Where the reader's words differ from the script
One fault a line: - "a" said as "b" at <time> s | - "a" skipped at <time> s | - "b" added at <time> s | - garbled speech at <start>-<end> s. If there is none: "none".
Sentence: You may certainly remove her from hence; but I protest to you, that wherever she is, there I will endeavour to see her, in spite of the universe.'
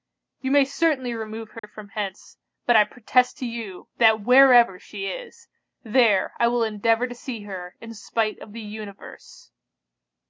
none